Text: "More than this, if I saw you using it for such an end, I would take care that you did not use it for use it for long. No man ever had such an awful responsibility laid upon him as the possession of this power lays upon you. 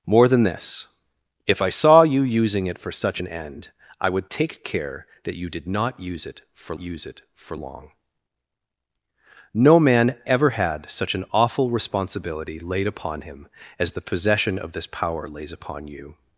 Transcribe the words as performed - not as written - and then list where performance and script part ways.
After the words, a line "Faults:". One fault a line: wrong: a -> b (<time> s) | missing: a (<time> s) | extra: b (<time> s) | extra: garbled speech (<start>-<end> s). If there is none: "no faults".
"More than this, if I saw you using it for such an end, I would take care that you did not use it for use it for long. No man ever had such an awful responsibility laid upon him as the possession of this power lays upon you.
Faults:
no faults